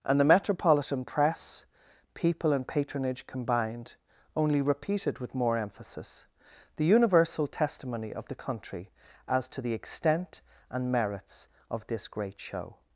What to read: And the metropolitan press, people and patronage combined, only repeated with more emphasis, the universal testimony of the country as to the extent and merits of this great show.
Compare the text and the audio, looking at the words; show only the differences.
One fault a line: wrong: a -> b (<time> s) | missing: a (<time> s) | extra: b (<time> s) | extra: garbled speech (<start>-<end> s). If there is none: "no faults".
no faults